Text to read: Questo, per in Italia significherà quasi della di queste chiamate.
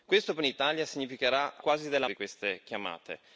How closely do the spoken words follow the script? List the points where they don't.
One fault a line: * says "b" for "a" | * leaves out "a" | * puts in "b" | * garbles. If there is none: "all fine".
all fine